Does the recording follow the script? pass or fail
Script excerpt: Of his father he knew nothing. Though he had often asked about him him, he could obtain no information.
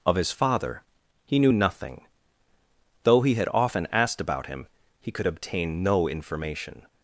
fail